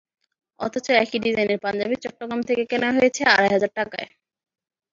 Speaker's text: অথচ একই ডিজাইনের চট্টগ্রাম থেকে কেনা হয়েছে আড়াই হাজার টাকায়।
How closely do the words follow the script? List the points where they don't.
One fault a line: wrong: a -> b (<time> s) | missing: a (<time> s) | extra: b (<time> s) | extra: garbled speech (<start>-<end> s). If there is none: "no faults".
extra: পাঞ্জাবি (1.6 s)